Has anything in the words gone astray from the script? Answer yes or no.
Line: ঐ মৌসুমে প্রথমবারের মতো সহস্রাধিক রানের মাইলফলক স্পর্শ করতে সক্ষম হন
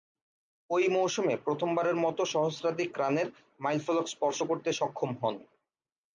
no